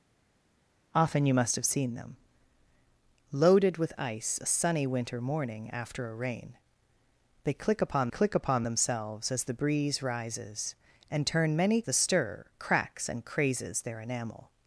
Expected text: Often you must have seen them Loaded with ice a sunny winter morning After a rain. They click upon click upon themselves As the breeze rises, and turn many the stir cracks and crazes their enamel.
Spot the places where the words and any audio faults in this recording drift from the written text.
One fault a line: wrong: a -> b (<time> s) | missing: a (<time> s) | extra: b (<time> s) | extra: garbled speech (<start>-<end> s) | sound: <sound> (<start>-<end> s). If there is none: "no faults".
no faults